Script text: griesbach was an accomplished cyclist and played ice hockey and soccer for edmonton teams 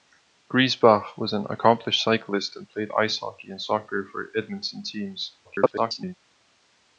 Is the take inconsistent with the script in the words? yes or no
yes